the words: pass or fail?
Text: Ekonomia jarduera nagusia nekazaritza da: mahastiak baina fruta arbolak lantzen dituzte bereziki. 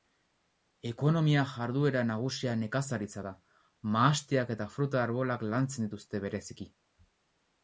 fail